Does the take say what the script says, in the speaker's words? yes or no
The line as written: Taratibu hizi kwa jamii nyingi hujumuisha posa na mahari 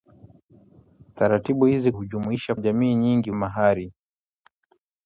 no